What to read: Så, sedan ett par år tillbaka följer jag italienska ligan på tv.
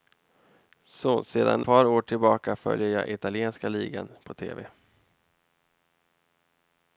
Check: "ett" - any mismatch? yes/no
yes